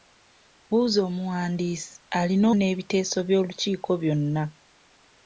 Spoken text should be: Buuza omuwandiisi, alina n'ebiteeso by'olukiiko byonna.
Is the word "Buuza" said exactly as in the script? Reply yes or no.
yes